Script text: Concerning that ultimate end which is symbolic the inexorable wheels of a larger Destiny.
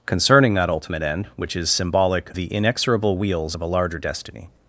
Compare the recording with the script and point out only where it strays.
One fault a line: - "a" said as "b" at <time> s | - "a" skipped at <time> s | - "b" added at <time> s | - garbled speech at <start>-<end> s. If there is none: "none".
none